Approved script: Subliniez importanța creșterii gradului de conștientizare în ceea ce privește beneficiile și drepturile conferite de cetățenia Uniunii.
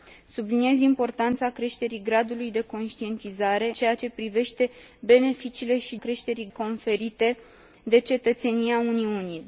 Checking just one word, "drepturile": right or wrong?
wrong